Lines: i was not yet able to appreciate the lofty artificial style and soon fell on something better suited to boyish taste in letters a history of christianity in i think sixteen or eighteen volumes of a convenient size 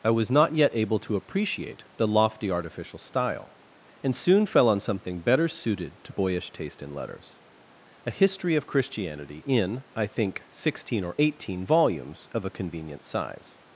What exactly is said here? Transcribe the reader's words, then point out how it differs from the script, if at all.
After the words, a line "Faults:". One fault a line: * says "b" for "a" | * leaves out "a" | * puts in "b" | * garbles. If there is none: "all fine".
i was not yet able to appreciate the lofty artificial style and soon fell on something better suited to boyish taste in letters a history of christianity in i think sixteen or eighteen volumes of a convenient size
Faults:
all fine